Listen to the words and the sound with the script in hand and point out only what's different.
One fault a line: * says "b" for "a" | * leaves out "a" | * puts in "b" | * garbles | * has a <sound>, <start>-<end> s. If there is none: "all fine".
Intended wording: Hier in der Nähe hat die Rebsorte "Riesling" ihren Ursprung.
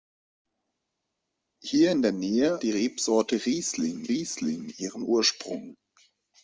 * leaves out "hat"
* puts in "riesling"